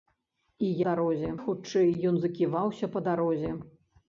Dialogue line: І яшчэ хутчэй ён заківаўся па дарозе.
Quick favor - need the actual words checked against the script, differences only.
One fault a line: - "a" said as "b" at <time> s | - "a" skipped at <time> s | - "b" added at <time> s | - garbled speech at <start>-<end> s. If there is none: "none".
- "яшчэ" said as "дарозе" at 0.9 s